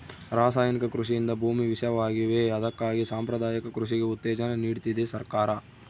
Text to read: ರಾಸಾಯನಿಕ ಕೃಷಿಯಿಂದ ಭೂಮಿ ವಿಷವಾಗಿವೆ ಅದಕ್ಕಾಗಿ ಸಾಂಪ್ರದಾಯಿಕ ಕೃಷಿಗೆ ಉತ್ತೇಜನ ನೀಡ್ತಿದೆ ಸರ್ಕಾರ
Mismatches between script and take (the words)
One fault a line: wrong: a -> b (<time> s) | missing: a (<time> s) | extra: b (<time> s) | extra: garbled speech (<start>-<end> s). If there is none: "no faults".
no faults